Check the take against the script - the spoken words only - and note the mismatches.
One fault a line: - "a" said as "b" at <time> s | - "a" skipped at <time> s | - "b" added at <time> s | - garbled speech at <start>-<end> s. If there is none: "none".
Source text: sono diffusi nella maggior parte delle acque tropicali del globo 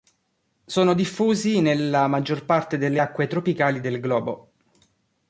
none